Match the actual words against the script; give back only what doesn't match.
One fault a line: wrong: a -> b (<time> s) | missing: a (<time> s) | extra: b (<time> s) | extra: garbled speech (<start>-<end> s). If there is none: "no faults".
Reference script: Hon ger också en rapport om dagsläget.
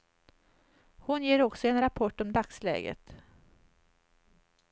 no faults